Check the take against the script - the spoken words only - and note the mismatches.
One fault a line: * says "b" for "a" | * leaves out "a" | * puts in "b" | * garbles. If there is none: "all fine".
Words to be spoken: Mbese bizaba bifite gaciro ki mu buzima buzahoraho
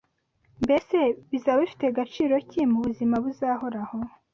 all fine